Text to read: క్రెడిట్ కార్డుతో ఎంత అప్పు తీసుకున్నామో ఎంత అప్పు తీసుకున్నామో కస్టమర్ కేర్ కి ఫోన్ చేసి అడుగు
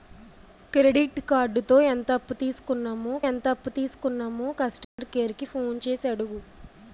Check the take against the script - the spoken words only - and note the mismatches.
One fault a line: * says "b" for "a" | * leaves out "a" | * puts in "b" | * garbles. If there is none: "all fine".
all fine